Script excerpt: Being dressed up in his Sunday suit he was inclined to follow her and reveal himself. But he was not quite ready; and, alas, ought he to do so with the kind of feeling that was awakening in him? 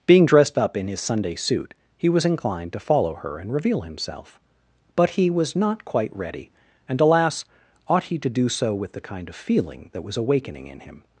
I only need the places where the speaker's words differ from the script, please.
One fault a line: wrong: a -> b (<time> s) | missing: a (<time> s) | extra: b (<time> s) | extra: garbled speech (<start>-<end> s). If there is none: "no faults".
no faults